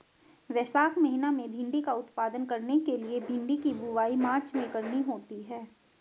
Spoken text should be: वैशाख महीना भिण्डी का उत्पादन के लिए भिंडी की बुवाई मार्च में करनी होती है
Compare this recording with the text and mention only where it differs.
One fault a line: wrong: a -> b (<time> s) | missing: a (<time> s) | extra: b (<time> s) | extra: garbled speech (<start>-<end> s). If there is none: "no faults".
extra: में (1.3 s)
extra: करने (2.5 s)